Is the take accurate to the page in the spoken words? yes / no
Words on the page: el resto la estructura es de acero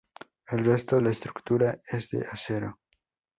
yes